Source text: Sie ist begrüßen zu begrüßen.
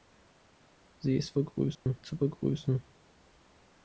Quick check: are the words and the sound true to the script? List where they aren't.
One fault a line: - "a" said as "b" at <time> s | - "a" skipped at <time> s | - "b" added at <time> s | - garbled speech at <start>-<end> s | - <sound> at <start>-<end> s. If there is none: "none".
- dropout at 1.7-1.9 s